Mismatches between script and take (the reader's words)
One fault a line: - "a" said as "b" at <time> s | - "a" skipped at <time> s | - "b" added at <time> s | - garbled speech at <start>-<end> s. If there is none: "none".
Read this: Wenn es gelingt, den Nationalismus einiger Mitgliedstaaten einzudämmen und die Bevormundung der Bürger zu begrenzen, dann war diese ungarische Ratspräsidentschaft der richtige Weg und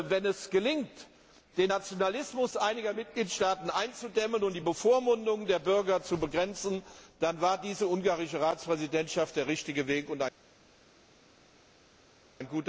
none